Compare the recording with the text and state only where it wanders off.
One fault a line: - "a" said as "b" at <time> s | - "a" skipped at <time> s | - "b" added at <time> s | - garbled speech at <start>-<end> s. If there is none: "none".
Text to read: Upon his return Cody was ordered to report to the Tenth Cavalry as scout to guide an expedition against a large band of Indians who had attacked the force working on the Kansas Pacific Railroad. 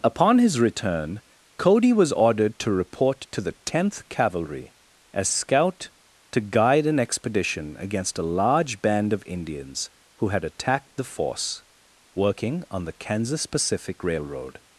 none